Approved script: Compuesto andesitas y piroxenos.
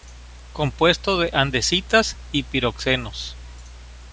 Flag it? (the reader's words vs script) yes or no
yes